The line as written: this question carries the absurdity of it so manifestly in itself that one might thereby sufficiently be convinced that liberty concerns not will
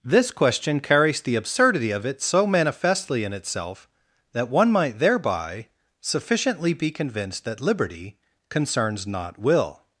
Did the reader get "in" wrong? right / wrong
right